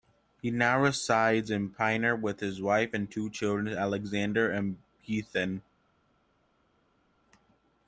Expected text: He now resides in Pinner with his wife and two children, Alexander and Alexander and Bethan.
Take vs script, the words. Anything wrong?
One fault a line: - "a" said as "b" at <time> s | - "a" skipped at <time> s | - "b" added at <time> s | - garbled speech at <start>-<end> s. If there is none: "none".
- "Alexander and" skipped at 4.8 s